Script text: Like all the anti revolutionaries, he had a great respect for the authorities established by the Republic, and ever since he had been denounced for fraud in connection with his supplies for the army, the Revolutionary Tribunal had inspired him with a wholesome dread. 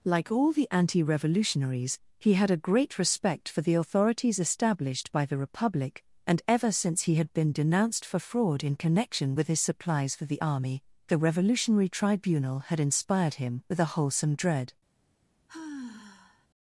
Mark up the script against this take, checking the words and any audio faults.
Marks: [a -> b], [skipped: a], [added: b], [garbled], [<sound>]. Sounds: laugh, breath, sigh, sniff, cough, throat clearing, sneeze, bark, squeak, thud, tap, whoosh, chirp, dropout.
Like all the anti revolutionaries, he had a great respect for the authorities established by the Republic, and ever since he had been denounced for fraud in connection with his supplies for the army, the Revolutionary Tribunal had inspired him with a wholesome dread. [sigh]